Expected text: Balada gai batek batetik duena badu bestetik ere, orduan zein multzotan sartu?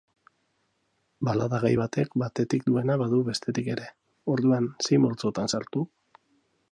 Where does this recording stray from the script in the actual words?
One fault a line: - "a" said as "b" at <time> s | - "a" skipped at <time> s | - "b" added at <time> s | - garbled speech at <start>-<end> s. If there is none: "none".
none